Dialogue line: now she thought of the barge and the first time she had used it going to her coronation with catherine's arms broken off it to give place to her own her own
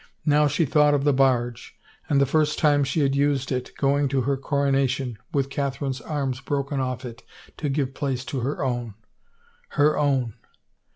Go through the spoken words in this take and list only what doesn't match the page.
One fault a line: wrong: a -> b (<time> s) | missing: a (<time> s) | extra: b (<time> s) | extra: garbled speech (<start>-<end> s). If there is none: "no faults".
no faults